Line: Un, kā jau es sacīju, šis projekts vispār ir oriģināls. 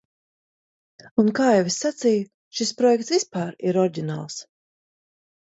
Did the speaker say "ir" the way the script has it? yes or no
yes